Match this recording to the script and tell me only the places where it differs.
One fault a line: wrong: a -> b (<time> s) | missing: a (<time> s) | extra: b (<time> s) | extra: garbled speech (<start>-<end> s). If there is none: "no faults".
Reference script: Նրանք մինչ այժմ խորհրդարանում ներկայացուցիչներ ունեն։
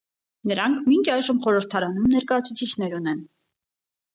no faults